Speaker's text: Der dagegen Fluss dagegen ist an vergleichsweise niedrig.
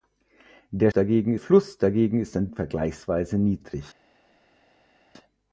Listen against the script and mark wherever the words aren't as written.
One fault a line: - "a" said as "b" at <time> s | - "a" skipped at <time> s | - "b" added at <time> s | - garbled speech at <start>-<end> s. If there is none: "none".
none